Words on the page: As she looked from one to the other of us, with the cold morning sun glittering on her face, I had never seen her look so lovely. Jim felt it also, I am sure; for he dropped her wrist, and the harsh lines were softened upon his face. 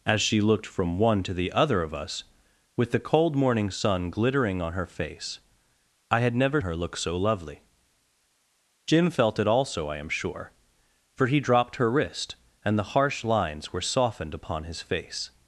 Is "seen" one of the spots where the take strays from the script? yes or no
yes